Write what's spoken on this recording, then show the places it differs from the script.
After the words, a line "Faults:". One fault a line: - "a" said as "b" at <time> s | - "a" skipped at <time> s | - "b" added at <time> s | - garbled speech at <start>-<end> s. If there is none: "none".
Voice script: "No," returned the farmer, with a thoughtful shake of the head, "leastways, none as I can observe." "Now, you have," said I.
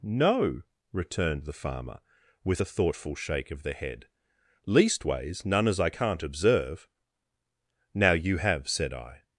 "No," returned the farmer, with a thoughtful shake of the head, "leastways, none as I can't observe." "Now, you have," said I.
Faults:
- "can" said as "can't" at 5.9 s